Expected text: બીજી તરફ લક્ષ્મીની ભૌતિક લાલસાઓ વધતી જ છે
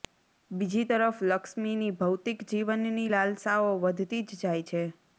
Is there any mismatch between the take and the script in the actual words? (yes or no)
yes